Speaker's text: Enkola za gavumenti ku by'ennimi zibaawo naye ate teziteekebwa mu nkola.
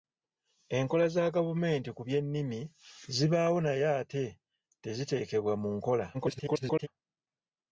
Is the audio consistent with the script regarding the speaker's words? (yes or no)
no